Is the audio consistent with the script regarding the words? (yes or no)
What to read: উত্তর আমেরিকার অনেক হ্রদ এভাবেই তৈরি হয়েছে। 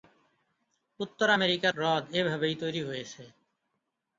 no